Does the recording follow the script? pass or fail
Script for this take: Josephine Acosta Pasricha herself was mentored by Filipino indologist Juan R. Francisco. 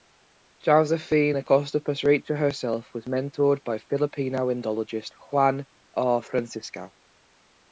pass